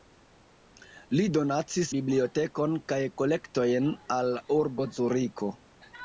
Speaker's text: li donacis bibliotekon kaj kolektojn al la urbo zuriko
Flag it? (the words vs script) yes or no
no